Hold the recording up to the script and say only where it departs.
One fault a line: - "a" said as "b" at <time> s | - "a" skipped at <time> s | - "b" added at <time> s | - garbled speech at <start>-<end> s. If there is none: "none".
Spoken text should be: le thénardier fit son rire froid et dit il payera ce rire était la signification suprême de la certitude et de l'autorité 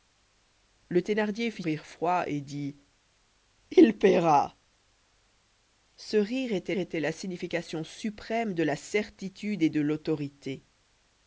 - "son" skipped at 1.6 s
- "était" added at 6.8 s